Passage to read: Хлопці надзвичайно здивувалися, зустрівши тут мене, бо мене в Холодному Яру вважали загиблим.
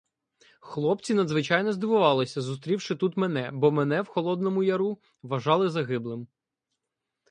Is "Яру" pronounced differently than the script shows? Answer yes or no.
no